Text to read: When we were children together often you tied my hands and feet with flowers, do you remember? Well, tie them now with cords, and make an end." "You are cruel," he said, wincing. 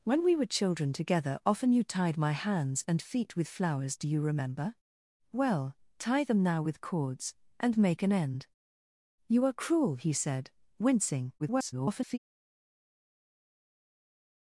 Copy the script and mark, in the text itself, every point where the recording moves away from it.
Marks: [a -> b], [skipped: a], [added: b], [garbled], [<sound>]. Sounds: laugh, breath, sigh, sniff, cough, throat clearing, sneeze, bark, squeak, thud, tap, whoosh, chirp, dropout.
When we were children together often you tied my hands and feet with flowers, do you remember? Well, tie them now with cords, and make an end." "You are cruel," he said, wincing. [garbled]